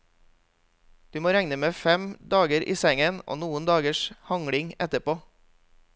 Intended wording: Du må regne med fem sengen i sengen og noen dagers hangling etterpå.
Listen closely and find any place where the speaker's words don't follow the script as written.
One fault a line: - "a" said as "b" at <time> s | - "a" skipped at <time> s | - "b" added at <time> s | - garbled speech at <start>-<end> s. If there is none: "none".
- "sengen" said as "dager" at 2.3 s